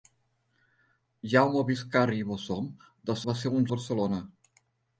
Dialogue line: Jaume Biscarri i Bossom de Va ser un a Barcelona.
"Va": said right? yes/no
yes